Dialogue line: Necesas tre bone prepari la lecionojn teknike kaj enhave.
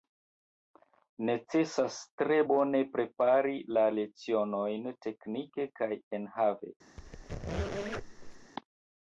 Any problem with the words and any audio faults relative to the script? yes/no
yes